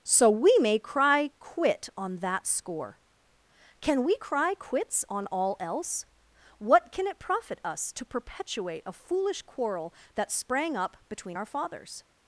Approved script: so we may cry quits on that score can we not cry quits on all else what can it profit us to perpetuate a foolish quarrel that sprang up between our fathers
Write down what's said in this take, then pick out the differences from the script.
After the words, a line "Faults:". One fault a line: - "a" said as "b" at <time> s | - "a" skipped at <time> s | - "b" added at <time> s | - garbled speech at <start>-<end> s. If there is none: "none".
so we may cry quit on that score can we cry quits on all else what can it profit us to perpetuate a foolish quarrel that sprang up between our fathers
Faults:
- "quits" said as "quit" at 1.4 s
- "not" skipped at 4.2 s